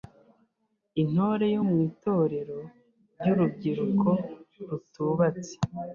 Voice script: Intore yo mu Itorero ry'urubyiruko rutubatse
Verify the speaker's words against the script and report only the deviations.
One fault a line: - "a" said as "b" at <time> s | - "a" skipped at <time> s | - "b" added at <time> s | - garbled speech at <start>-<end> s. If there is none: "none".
none